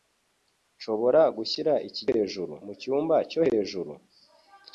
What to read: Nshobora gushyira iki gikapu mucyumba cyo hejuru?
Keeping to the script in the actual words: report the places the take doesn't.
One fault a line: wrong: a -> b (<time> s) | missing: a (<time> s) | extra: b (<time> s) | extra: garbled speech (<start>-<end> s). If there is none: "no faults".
wrong: gikapu -> hejuru (2.1 s)